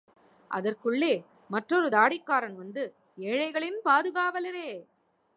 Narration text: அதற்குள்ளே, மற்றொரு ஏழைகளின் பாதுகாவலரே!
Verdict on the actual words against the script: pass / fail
fail